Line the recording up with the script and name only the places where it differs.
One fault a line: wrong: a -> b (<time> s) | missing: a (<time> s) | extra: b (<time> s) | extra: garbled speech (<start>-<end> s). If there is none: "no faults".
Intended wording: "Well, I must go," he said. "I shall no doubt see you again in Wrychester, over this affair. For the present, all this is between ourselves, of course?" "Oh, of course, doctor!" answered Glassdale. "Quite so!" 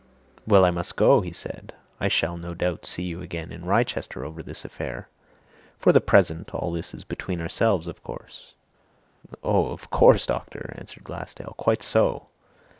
no faults